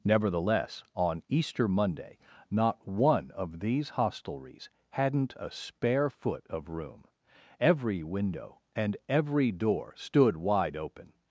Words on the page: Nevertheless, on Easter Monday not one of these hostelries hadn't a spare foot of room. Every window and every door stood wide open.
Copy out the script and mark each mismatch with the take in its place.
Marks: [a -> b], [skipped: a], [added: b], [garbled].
Nevertheless, on Easter Monday not one of these hostelries hadn't a spare foot of room. Every window and every door stood wide open.